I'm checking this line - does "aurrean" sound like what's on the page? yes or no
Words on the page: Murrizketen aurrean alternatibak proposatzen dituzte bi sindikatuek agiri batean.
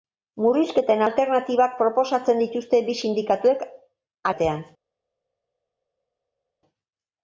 no